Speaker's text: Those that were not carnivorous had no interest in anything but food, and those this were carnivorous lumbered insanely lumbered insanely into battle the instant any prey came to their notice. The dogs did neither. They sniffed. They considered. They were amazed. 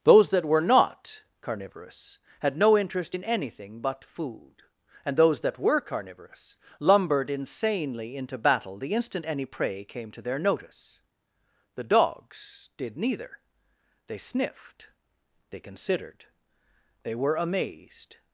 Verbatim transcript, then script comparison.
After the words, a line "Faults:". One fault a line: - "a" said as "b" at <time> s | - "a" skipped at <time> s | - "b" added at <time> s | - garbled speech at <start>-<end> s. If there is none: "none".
Those that were not carnivorous had no interest in anything but food, and those that were carnivorous lumbered insanely into battle the instant any prey came to their notice. The dogs did neither. They sniffed. They considered. They were amazed.
Faults:
- "this" said as "that" at 5.4 s
- "lumbered insanely" skipped at 8.1 s